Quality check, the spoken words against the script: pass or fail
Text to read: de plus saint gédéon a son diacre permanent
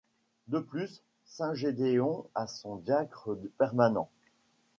pass